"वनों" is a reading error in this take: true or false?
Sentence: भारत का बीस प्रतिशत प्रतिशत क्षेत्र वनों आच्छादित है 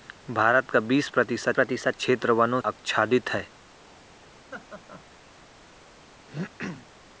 false